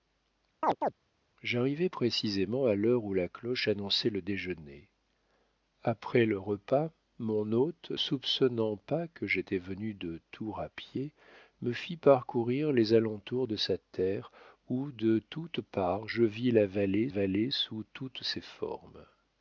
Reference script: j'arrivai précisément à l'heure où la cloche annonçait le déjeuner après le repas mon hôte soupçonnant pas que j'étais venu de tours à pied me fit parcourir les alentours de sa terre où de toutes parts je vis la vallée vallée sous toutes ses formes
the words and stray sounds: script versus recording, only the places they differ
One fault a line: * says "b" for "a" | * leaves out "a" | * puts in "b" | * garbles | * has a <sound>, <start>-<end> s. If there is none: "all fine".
* has a chirp, 0.6-0.9 s